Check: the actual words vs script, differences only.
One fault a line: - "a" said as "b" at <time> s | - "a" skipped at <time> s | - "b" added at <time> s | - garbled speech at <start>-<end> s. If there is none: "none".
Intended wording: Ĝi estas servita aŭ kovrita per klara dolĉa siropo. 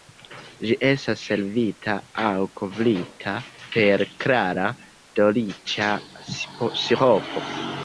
none